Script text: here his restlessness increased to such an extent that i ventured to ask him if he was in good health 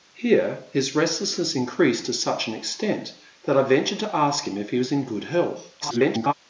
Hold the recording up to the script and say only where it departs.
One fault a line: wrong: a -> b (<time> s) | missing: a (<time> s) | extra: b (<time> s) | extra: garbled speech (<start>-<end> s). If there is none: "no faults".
extra: garbled speech (5.8-6.3 s)